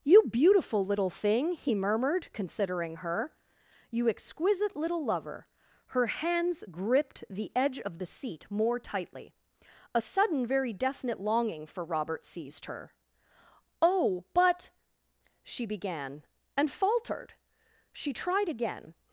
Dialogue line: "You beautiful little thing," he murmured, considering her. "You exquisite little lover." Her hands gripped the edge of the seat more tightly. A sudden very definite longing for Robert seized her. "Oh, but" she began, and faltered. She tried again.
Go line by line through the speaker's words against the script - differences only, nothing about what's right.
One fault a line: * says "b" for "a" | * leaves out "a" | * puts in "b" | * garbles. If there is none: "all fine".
all fine